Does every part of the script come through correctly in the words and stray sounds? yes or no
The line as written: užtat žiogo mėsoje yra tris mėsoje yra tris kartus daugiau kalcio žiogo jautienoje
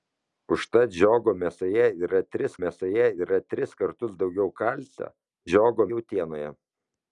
yes